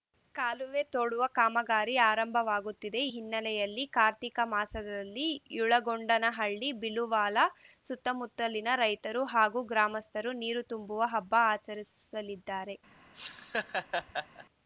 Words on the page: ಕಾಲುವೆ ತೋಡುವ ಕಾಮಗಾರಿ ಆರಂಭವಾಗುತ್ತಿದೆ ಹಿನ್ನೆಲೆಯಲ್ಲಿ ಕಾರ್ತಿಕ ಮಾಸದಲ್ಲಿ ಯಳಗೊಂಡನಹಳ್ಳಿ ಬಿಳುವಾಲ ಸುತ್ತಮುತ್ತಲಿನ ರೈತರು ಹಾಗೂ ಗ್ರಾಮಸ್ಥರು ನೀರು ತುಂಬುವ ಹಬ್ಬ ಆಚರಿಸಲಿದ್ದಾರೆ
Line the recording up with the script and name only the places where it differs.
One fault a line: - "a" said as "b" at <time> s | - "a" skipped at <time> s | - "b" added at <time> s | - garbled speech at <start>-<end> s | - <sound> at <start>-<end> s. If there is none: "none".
- laugh at 13.1-14.5 s